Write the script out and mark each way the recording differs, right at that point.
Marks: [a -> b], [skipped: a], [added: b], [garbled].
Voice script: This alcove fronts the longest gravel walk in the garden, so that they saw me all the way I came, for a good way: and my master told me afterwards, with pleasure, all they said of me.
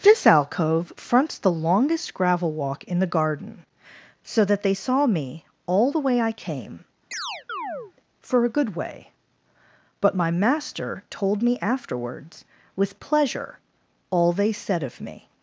This alcove fronts the longest gravel walk in the garden, so that they saw me all the way I came, for a good way: [and -> but] my master told me afterwards, with pleasure, all they said of me.